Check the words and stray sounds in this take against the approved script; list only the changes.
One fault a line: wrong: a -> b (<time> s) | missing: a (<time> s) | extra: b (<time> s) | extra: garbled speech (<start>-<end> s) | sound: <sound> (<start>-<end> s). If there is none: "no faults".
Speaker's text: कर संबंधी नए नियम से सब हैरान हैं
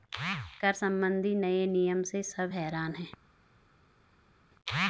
no faults